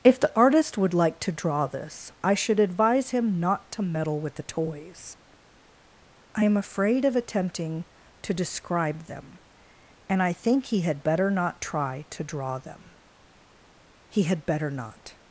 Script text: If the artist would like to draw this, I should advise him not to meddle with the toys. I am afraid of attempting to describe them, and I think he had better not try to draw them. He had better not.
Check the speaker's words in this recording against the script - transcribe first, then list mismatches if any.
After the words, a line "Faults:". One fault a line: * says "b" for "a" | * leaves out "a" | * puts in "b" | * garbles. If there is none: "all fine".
If the artist would like to draw this, I should advise him not to meddle with the toys. I am afraid of attempting to describe them, and I think he had better not try to draw them. He had better not.
Faults:
all fine